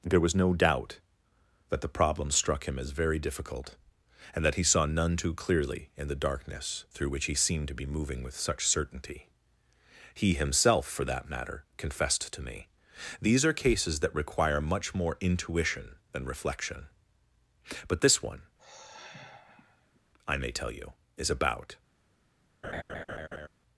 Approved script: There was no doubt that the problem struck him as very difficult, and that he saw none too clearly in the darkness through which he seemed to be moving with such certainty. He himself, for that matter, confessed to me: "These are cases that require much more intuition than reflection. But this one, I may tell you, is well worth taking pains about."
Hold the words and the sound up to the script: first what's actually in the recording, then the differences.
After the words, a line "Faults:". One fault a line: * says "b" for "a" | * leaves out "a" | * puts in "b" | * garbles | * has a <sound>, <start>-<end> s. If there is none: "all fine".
There was no doubt that the problem struck him as very difficult, and that he saw none too clearly in the darkness through which he seemed to be moving with such certainty. He himself, for that matter, confessed to me: "These are cases that require much more intuition than reflection. But this one, I may tell you, is about."
Faults:
* has a sigh, 18.6-20.0 s
* leaves out "well worth taking pains"
* has a laugh, 22.6-23.5 s